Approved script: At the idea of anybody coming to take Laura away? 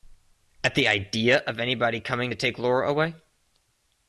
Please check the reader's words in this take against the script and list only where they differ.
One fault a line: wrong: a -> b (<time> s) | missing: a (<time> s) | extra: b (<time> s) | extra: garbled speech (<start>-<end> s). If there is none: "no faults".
no faults